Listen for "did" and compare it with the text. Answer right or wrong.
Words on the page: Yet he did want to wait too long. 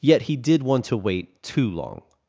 right